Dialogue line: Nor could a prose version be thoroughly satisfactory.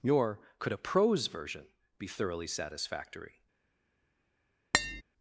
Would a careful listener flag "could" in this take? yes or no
no